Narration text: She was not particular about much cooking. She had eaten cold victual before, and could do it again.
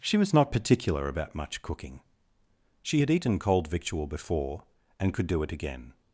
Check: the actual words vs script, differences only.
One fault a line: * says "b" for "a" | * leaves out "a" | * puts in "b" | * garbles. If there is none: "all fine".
all fine